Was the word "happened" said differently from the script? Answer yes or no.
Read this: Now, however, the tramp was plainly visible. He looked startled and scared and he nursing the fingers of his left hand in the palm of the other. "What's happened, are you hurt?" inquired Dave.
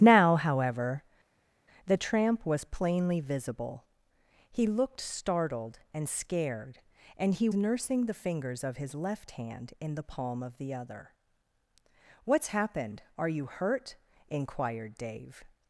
no